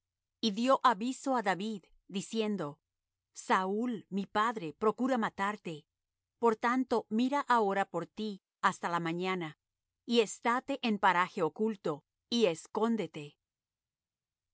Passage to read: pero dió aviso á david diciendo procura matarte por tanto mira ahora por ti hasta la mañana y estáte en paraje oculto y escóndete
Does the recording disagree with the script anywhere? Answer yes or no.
yes